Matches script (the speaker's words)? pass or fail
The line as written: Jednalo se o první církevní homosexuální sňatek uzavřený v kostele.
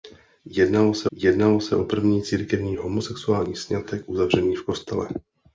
fail